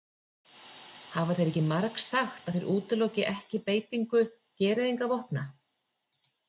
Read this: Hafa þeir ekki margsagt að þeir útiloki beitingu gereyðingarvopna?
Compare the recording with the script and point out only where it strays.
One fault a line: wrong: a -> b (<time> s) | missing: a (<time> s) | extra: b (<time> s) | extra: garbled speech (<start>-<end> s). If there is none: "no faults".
extra: ekki (3.3 s)